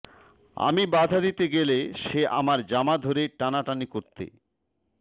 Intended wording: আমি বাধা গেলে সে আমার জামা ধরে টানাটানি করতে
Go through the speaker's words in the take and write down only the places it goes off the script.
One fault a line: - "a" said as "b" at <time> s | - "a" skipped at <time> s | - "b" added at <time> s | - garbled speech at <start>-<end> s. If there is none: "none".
- "দিতে" added at 1.2 s